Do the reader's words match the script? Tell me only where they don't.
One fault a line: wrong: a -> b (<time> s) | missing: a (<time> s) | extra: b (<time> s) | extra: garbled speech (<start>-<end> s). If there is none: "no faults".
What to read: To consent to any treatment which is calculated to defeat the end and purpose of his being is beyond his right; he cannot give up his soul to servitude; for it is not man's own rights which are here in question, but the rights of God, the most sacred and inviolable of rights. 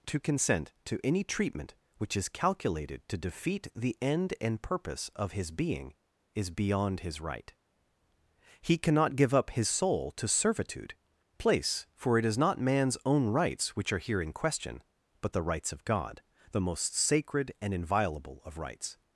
extra: place (11.4 s)